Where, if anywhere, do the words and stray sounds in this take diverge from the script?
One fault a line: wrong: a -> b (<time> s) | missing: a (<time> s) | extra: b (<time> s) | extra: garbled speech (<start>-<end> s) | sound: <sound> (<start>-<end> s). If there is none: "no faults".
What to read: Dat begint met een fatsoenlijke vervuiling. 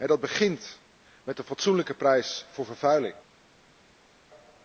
extra: prijs voor (1.9 s)